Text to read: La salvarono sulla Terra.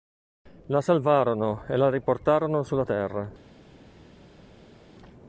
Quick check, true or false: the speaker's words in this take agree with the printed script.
false